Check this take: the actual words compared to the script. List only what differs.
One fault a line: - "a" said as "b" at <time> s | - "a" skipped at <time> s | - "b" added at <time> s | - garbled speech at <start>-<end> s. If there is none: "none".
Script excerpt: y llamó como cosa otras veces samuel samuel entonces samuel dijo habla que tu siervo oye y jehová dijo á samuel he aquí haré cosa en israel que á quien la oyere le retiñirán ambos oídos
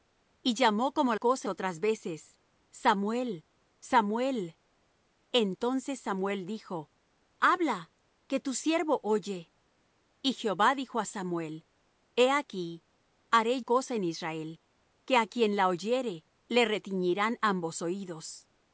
none